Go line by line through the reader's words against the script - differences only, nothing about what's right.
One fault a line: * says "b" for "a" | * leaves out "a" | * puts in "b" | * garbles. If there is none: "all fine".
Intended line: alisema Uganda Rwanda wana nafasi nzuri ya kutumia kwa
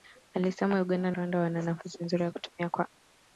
all fine